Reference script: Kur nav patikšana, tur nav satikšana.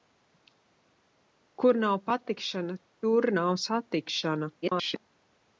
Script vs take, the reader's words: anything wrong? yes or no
yes